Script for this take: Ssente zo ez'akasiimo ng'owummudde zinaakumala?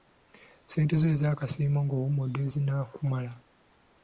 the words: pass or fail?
pass